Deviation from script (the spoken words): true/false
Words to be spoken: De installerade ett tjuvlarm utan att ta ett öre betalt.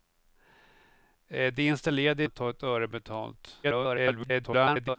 true